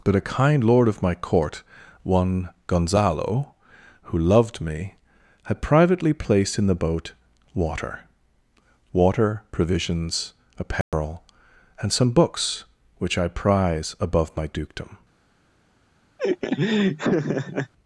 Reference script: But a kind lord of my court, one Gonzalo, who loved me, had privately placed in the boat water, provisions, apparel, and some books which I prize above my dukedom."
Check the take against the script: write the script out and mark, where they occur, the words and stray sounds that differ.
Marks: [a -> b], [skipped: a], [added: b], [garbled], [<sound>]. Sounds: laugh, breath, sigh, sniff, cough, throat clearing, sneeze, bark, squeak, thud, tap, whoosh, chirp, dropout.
But a kind lord of my court, one Gonzalo, who loved me, had privately placed in the boat water, [added: water] provisions, apparel, [dropout] and some books which I prize above my dukedom." [laugh]